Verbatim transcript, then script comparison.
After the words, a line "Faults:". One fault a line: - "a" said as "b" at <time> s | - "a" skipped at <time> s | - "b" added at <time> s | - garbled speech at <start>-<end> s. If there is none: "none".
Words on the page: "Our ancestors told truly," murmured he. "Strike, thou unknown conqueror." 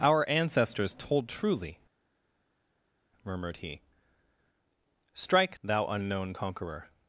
"Our ancestors told truly," murmured he. "Strike, thou unknown conqueror."
Faults:
none